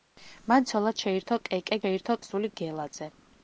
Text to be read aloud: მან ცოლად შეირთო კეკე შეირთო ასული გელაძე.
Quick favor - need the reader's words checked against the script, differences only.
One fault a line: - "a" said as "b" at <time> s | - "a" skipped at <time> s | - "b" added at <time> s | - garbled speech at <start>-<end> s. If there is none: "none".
none